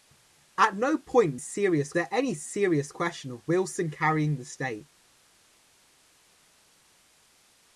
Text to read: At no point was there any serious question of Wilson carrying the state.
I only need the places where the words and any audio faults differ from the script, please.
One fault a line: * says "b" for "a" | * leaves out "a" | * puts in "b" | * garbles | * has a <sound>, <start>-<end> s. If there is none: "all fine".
* says "serious" for "was"